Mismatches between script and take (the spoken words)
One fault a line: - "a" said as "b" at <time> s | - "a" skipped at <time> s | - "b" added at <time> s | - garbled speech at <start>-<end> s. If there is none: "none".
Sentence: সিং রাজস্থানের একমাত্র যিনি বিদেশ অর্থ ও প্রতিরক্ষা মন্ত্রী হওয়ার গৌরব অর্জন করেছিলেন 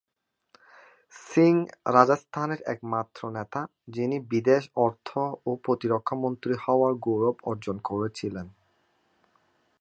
- "নেতা" added at 3.3 s